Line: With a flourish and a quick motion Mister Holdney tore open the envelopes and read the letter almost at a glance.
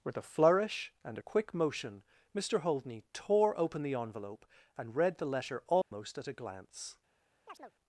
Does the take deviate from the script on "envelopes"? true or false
true